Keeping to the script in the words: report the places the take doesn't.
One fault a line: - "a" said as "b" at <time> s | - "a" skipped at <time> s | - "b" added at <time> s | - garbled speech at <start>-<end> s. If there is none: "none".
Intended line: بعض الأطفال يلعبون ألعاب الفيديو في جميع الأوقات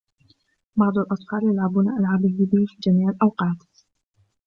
none